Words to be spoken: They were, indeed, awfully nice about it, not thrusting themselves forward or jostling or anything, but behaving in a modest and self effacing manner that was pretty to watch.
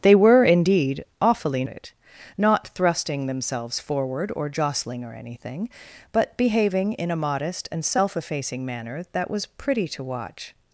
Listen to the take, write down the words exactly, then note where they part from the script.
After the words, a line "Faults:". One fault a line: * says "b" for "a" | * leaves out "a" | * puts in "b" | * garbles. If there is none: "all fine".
They were, indeed, awfully it, not thrusting themselves forward or jostling or anything, but behaving in a modest and self effacing manner that was pretty to watch.
Faults:
* leaves out "nice about"